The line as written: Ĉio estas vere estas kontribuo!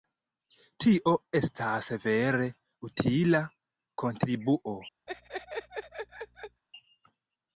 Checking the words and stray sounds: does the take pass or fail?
fail